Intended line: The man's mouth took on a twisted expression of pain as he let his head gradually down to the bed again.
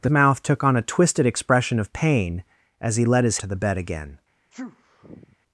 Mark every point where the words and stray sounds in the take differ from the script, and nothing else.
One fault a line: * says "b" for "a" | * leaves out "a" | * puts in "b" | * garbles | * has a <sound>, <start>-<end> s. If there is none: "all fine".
* leaves out "man's"
* leaves out "head gradually down"
* has a sneeze, 4.5-5.4 s